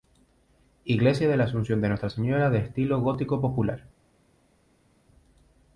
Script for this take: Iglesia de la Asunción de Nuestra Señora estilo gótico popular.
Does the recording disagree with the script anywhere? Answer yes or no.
yes